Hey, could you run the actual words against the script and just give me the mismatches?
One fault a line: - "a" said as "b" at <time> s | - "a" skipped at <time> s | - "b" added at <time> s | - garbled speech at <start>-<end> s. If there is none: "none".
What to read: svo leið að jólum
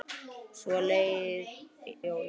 - "að" skipped at 1.5 s